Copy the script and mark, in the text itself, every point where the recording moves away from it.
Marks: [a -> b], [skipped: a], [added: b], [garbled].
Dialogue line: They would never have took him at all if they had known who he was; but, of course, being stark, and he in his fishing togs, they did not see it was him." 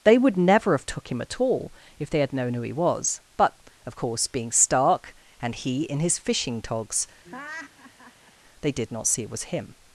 They would never have took him at all if they had known who he was; but, of course, being stark, and he in his fishing togs, they did not see it was him."